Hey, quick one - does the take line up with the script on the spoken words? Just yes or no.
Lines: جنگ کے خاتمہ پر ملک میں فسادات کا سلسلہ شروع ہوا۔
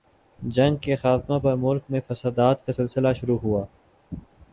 yes